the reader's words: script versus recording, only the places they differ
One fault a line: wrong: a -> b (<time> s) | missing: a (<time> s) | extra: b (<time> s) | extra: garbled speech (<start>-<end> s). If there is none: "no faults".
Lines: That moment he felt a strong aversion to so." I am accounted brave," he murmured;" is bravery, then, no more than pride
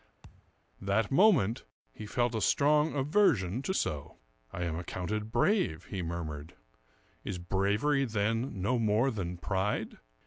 no faults